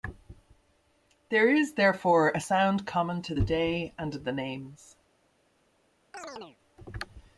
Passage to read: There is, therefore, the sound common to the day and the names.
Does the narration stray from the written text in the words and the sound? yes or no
yes